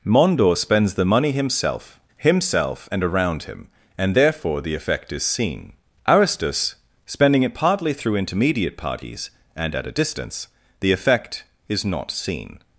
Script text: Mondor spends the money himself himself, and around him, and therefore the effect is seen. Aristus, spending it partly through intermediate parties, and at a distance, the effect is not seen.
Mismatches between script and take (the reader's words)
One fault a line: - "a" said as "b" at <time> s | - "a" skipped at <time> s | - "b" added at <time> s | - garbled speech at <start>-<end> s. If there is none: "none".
none